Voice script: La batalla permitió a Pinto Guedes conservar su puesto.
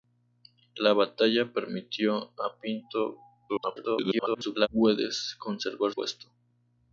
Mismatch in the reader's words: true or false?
true